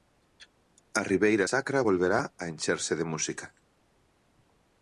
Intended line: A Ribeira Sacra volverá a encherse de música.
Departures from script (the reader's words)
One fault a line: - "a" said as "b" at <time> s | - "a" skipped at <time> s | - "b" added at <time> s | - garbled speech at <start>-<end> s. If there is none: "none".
none